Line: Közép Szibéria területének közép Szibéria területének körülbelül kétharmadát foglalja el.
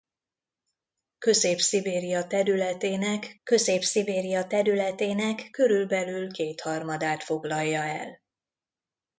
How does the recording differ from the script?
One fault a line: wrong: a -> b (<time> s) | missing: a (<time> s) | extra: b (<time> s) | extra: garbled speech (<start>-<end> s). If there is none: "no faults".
no faults